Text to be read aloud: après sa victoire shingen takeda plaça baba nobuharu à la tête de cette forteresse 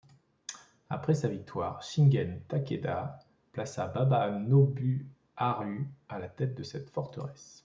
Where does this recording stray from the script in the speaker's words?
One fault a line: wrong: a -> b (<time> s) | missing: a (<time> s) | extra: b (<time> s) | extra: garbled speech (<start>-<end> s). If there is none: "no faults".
no faults